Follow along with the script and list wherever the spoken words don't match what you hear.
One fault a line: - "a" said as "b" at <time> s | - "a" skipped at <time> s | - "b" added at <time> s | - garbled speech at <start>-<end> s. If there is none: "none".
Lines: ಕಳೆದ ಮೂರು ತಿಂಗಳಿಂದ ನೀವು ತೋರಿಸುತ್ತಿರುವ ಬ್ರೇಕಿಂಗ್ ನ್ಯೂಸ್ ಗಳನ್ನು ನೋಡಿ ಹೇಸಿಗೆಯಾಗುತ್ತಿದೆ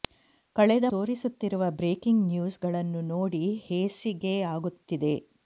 - "ಮೂರು ತಿಂಗಳಿಂದ ನೀವು" skipped at 0.8 s